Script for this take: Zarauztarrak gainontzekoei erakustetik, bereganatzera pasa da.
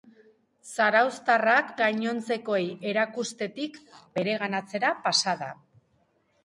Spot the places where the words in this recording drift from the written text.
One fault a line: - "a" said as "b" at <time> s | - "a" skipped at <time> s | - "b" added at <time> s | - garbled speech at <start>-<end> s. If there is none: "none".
none